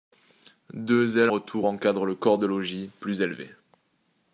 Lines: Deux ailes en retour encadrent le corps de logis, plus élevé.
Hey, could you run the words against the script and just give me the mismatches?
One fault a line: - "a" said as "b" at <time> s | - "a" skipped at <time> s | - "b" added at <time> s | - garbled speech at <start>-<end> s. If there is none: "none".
- "en" skipped at 1.3 s